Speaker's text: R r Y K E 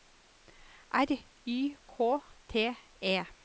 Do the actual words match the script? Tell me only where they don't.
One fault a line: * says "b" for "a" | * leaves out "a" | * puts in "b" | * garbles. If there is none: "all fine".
* leaves out "r"
* puts in "T"